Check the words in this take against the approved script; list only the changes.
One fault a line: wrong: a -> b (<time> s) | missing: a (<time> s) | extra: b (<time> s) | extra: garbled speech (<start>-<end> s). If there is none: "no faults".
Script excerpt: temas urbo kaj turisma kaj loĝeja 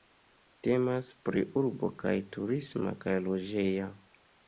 extra: pri (1.3 s)